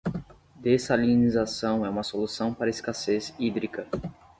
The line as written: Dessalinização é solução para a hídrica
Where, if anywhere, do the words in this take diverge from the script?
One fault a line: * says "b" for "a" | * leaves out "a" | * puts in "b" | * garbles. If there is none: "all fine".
* puts in "uma"
* puts in "escassez"